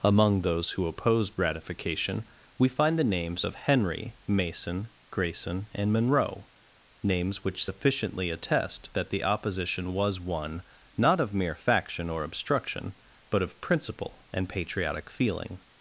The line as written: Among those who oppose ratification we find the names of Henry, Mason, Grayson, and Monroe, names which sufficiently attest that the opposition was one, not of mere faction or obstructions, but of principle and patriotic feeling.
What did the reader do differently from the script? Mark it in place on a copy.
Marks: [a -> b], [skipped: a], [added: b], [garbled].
Among those who [oppose -> opposed] ratification we find the names of Henry, Mason, Grayson, and Monroe, names which sufficiently attest that the opposition was one, not of mere faction or [obstructions, -> obstruction] but of principle and patriotic feeling.